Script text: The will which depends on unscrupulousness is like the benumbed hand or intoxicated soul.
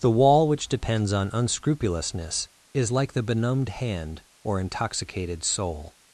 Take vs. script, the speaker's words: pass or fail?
fail